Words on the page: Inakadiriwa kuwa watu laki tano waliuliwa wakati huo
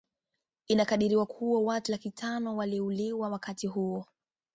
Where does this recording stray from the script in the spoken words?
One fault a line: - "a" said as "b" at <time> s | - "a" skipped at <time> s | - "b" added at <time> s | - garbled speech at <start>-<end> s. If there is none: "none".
none